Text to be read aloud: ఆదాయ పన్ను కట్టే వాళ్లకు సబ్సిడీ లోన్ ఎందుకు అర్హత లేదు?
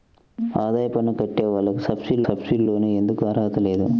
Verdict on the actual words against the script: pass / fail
fail